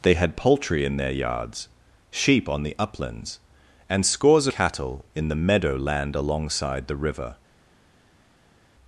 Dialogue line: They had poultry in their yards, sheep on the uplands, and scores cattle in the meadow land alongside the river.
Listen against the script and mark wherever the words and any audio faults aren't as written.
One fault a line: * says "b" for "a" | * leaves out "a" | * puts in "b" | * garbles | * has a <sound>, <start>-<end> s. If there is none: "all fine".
all fine